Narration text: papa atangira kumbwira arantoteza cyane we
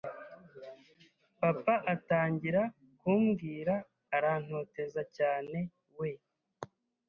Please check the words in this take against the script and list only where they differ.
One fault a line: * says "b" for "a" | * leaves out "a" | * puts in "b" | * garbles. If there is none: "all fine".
all fine